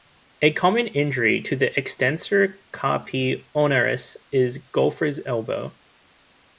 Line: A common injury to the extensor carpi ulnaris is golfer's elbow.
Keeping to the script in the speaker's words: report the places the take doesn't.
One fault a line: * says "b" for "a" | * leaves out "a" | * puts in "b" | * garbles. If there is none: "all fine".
all fine